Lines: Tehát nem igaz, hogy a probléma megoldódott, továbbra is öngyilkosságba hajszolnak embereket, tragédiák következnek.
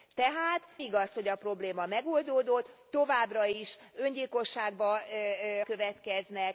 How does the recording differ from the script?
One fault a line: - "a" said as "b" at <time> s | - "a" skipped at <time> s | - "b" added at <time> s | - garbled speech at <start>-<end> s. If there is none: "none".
- "nem" skipped at 0.6 s
- "hajszolnak embereket tragédiák" skipped at 5.0 s